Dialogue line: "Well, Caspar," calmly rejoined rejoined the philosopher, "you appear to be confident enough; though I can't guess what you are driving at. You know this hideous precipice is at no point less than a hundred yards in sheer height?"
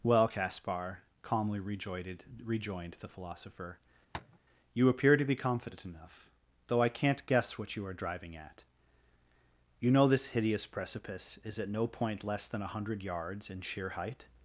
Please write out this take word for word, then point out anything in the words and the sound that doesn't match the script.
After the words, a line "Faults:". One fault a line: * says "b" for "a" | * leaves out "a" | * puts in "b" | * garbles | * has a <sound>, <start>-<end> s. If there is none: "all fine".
"Well, Caspar," calmly rejoined rejoined the philosopher, "you appear to be confident enough; though I can't guess what you are driving at. You know this hideous precipice is at no point less than a hundred yards in sheer height?"
Faults:
* has a tap, 4.1-4.4 s